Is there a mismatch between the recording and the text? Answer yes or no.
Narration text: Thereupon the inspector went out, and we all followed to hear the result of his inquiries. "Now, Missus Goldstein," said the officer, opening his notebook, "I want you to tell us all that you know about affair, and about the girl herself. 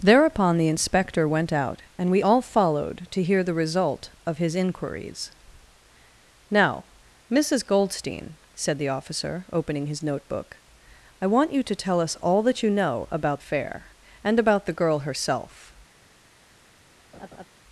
no